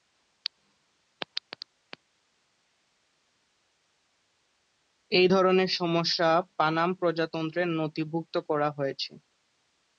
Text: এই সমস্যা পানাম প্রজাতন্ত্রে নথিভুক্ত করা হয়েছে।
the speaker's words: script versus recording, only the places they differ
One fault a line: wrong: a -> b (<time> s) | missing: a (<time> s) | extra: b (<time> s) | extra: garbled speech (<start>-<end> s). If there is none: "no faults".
extra: ধরনের (5.3 s)